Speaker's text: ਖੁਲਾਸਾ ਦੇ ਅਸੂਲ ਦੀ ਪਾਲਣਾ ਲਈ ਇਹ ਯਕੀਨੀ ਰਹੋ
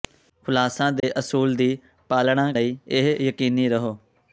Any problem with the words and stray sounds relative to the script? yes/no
yes